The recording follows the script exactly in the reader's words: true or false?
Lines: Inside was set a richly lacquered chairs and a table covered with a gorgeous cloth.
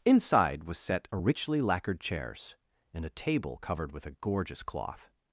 true